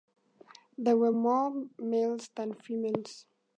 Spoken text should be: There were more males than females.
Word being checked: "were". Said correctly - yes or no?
yes